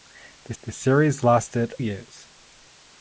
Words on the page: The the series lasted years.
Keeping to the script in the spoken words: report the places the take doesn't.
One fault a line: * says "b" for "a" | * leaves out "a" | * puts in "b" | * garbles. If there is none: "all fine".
all fine